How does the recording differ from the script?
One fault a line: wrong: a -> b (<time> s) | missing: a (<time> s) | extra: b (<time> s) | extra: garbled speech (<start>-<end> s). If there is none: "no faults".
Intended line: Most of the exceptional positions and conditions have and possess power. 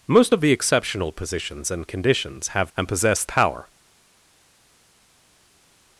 no faults